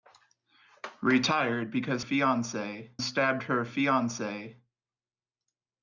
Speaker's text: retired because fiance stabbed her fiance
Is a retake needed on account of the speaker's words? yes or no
no